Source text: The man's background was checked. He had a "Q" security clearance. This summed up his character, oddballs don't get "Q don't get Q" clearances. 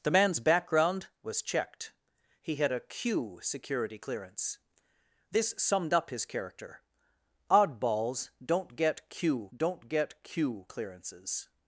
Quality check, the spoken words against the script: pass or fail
pass